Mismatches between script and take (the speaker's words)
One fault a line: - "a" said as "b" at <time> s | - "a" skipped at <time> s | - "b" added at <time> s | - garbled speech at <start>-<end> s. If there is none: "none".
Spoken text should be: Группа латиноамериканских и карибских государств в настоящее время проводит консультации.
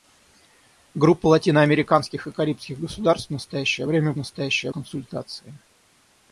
- "проводит" said as "настоящее" at 4.2 s